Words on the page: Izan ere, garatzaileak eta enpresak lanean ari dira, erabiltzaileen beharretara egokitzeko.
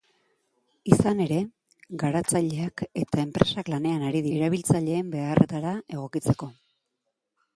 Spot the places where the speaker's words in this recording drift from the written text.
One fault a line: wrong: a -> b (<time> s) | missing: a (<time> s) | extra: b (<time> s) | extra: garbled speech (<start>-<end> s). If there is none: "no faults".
missing: dira (4.2 s)